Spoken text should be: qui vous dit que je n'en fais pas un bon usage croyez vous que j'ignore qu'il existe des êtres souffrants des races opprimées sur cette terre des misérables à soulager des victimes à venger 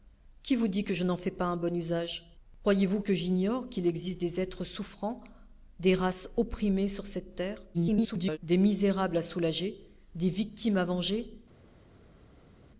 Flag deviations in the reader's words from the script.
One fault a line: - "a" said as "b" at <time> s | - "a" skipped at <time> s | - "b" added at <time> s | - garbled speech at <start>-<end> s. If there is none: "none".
- garbled speech at 7.7-8.4 s